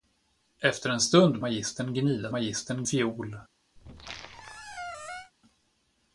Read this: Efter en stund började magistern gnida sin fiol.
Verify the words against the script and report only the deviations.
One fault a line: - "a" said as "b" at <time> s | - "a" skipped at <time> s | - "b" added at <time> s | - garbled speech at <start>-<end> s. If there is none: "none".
- "började" skipped at 1.4 s
- "sin" said as "magistern" at 2.3 s